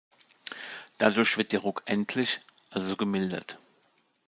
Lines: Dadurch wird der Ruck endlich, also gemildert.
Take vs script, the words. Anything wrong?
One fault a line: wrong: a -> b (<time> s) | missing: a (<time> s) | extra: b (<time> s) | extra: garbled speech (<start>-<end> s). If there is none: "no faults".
no faults